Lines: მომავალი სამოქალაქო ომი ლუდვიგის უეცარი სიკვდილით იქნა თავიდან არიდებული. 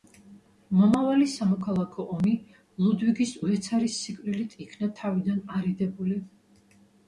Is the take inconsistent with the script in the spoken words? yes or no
no